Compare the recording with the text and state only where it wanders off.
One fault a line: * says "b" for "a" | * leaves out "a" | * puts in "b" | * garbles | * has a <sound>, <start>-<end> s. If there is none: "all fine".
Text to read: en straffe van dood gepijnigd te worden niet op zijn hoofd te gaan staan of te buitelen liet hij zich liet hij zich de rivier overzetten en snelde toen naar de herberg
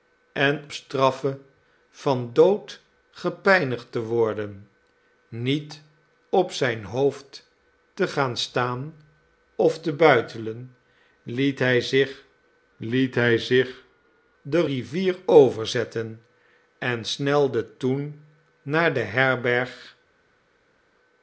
all fine